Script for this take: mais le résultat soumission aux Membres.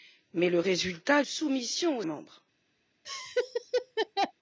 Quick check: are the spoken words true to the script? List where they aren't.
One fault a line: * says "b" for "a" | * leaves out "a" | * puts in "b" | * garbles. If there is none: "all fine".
all fine